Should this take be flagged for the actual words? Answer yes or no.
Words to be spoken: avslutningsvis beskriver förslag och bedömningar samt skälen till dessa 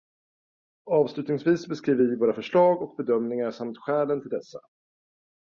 yes